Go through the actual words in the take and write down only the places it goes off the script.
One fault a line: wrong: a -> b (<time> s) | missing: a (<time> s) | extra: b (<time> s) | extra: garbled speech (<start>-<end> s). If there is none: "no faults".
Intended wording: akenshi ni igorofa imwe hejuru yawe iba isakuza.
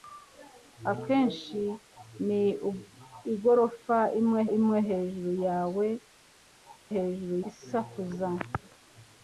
extra: imwe (4.6 s)
wrong: iba -> hejuru (6.9 s)